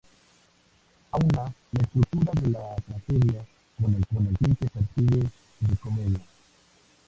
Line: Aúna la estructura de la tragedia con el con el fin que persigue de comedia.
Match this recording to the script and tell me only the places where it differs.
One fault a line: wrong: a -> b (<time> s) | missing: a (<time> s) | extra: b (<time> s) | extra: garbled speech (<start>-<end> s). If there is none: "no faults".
no faults